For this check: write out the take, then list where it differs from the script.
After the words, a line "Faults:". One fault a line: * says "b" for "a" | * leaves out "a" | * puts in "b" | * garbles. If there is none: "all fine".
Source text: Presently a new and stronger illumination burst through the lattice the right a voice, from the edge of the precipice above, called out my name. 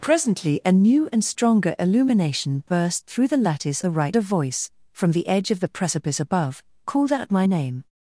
Presently a new and stronger illumination burst through the lattice the right a voice, from the edge of the precipice above, called out my name.
Faults:
all fine